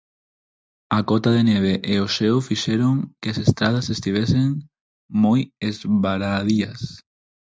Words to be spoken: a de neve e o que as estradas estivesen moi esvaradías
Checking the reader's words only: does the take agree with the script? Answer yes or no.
no